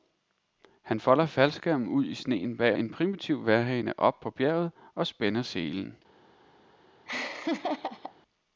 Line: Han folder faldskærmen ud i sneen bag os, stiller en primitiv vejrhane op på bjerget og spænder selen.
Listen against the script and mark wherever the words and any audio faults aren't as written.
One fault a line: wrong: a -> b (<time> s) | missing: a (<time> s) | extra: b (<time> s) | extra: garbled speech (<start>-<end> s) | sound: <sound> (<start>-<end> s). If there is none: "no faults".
missing: os stiller (2.8 s)
sound: laugh (7.1-8.2 s)